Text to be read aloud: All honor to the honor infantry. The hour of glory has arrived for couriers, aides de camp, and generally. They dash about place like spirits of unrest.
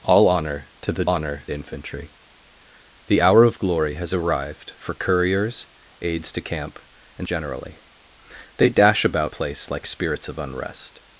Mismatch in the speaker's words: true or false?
false